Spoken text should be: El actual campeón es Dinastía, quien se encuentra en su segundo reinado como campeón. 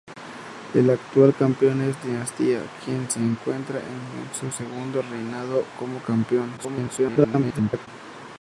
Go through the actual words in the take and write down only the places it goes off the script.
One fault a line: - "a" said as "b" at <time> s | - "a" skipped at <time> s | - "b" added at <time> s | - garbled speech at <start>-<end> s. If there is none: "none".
- garbled speech at 6.6-7.9 s